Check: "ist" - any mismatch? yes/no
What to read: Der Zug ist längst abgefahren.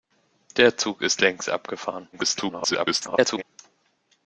no